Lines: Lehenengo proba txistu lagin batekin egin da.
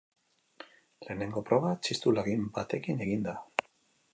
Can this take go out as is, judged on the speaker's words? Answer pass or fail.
pass